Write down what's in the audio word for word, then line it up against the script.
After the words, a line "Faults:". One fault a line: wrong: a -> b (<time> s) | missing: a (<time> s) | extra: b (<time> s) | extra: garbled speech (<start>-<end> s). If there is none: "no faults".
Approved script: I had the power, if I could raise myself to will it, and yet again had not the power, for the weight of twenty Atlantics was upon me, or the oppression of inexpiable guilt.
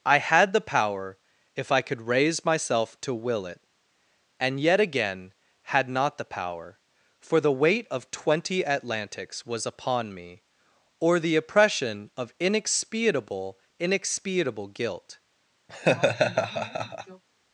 I had the power, if I could raise myself to will it, and yet again had not the power, for the weight of twenty Atlantics was upon me, or the oppression of inexpiable inexpiable guilt.
Faults:
extra: inexpiable (13.8 s)